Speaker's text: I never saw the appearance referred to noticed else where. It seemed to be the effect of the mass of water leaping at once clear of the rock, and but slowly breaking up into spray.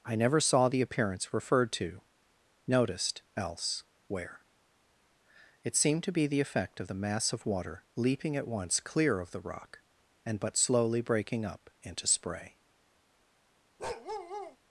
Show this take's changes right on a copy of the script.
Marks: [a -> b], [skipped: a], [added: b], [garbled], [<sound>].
I never saw the appearance referred to noticed else where. It seemed to be the effect of the mass of water leaping at once clear of the rock, and but slowly breaking up into spray. [bark]